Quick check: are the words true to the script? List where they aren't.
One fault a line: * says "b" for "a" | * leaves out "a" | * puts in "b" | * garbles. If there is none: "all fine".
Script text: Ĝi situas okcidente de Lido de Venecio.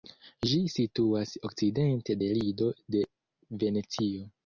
all fine